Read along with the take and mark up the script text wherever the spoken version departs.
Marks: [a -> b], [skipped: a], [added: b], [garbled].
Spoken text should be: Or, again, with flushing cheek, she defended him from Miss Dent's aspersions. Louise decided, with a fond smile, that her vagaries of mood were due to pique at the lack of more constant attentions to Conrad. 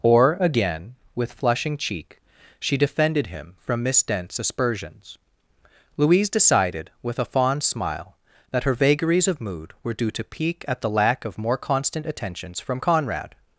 Or, again, with flushing cheek, she defended him from Miss Dent's aspersions. Louise decided, with a fond smile, that her vagaries of mood were due to pique at the lack of more constant attentions [to -> from] Conrad.